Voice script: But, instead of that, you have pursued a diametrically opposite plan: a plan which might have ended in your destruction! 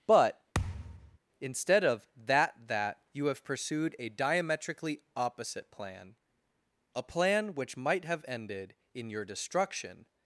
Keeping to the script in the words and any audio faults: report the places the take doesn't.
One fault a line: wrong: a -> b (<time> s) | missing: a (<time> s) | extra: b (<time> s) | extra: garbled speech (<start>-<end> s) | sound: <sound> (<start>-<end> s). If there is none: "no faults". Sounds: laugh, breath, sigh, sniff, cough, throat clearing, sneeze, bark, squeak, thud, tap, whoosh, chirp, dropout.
sound: thud (0.5-1.2 s)
extra: that (2.7 s)